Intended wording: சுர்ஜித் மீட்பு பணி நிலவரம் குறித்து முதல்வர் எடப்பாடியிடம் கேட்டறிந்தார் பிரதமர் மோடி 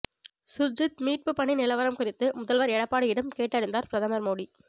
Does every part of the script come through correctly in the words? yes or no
yes